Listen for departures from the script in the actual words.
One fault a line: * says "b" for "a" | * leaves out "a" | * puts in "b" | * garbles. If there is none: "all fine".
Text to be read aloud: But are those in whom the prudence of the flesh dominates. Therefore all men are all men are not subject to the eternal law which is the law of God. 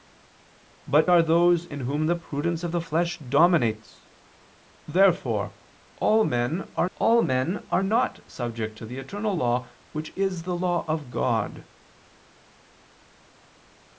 all fine